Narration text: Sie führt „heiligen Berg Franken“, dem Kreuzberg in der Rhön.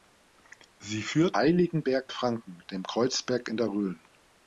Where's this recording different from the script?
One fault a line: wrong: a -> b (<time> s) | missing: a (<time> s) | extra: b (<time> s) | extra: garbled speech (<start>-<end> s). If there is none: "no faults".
no faults